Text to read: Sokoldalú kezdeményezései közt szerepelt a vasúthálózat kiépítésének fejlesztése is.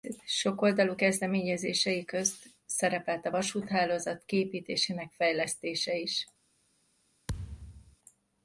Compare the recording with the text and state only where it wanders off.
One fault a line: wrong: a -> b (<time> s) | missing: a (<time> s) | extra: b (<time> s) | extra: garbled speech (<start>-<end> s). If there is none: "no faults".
no faults